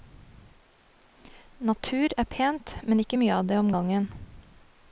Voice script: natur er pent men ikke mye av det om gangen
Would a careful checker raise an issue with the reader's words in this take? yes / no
no